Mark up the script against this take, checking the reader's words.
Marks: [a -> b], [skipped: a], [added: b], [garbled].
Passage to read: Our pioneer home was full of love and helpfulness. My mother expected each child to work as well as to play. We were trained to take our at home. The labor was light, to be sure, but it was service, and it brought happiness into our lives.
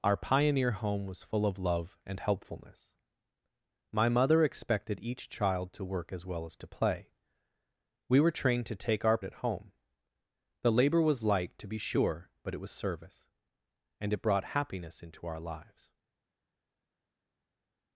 Our pioneer home was full of love and helpfulness. My mother expected each child to work as well as to play. We were trained to take our at home. The labor was light, to be sure, but it was service, and it brought happiness into our lives.